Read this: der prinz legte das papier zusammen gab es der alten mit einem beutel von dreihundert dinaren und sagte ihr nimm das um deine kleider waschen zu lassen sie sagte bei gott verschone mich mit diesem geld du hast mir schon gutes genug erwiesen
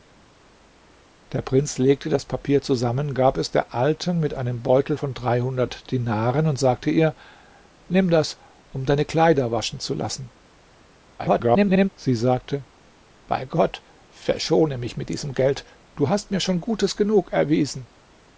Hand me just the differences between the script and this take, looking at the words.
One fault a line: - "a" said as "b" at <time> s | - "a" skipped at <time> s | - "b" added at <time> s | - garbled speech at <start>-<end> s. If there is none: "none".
- garbled speech at 11.2-11.9 s